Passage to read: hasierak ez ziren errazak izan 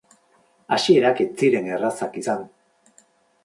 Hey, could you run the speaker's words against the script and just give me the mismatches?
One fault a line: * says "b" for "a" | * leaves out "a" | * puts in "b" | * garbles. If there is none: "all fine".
all fine